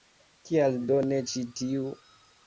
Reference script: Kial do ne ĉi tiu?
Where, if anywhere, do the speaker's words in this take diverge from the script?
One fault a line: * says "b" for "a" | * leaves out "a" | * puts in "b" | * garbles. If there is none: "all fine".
all fine